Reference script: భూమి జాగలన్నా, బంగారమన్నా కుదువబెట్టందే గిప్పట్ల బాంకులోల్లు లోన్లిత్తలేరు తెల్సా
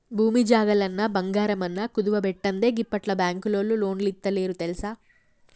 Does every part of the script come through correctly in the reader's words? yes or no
yes